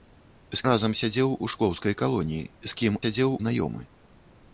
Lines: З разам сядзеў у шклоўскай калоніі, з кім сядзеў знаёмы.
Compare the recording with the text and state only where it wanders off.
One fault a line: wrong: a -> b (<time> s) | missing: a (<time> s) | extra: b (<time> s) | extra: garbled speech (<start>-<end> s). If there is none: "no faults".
no faults